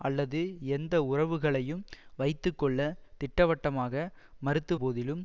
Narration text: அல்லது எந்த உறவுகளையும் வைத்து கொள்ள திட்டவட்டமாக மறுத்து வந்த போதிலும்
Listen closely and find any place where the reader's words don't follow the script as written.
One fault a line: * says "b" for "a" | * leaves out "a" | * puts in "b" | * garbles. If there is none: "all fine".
* leaves out "வந்த"